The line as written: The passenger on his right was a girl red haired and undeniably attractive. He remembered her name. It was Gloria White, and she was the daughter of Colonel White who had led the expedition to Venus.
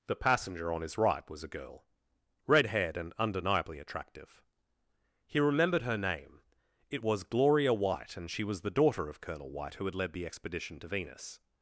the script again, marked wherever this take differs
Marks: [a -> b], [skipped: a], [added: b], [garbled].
The passenger on his right was a girl red haired and undeniably attractive. He remembered her name. It was Gloria White, and she was the daughter of Colonel White who had led the expedition to Venus.